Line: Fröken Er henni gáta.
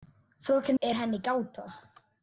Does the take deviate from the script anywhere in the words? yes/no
no